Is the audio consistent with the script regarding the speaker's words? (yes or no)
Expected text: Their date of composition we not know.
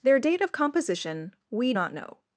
yes